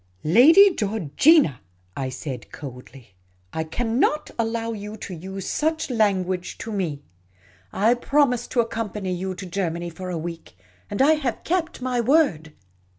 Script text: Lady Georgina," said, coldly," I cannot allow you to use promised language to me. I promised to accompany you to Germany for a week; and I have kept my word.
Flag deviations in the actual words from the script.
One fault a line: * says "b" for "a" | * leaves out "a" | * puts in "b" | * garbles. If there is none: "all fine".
* puts in "I"
* says "such" for "promised"